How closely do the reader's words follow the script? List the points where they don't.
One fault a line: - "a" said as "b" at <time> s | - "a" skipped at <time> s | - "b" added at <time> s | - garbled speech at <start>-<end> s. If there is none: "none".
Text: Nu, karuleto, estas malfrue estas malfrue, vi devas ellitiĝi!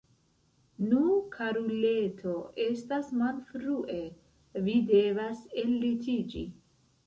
- "estas malfrue" skipped at 4.0 s